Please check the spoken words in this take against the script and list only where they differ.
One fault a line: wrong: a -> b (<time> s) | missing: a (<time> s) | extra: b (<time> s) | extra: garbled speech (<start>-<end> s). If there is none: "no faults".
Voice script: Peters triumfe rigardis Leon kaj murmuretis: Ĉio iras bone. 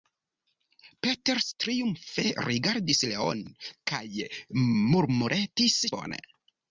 missing: Ĉio iras (5.8 s)